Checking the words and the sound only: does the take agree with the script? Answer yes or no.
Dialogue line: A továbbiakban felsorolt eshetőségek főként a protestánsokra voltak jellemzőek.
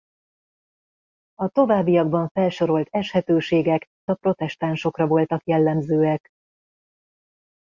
no